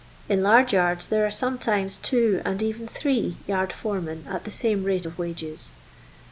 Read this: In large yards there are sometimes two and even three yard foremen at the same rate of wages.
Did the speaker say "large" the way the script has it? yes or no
yes